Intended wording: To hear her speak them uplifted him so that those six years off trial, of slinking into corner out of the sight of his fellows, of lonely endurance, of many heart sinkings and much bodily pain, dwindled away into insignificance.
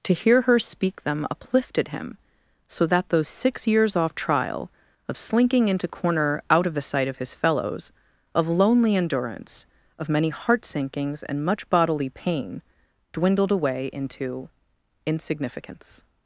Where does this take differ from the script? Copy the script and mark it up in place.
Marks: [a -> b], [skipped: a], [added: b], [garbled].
To hear her speak them uplifted him so that those six years off trial, of slinking into corner out of the sight of his fellows, of lonely endurance, of many heart sinkings and much bodily pain, dwindled away into insignificance.